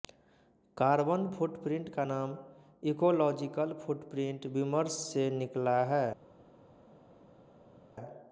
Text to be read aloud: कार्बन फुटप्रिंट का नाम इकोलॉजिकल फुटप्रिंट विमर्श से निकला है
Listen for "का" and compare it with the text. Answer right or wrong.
right